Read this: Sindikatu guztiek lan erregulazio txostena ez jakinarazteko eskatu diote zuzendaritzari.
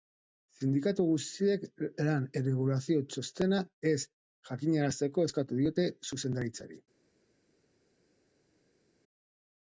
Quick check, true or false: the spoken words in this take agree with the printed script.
true